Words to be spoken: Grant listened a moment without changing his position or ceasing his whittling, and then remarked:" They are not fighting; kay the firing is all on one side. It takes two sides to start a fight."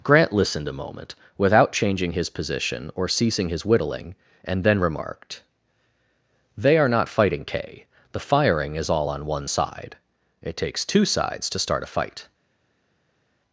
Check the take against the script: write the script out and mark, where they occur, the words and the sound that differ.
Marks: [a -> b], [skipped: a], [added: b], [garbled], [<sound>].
Grant listened a moment without changing his position or ceasing his whittling, and then remarked:" They are not fighting; kay the firing is all on one side. It takes two sides to start a fight."